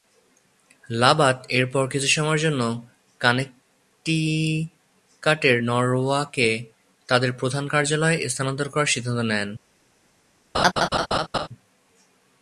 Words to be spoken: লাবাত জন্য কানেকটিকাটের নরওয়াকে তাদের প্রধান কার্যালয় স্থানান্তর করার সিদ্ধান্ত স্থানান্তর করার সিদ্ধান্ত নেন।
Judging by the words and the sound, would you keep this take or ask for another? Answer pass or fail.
fail